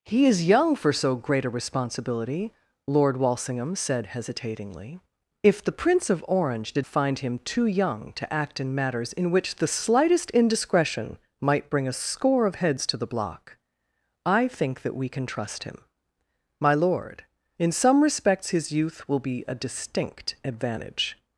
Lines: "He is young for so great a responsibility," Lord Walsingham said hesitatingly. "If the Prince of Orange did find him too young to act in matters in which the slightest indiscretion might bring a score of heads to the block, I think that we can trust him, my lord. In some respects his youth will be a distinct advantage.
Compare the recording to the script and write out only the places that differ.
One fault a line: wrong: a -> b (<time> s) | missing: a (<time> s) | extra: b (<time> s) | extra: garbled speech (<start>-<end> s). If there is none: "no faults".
no faults